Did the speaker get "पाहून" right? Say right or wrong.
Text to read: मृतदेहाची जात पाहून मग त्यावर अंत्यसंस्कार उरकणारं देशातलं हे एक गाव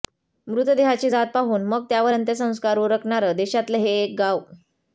right